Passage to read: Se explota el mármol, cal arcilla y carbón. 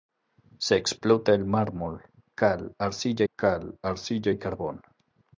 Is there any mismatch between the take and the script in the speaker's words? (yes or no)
yes